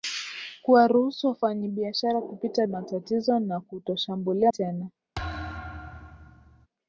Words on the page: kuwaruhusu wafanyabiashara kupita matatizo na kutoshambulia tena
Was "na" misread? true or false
false